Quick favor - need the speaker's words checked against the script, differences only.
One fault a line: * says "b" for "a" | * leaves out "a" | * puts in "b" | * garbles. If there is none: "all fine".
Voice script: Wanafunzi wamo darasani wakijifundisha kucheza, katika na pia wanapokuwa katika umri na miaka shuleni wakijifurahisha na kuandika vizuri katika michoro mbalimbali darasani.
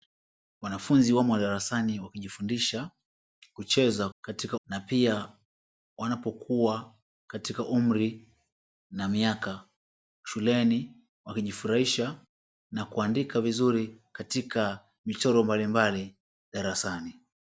all fine